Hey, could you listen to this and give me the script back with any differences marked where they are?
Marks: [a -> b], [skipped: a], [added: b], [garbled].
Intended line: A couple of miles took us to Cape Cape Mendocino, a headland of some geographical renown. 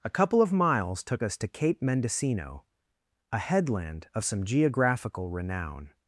A couple of miles took us to Cape [skipped: Cape] Mendocino, a headland of some geographical renown.